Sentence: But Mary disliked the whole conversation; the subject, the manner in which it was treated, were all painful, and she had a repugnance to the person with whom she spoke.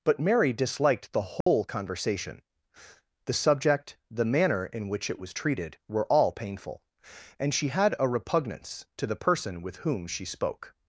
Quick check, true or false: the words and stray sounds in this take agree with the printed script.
false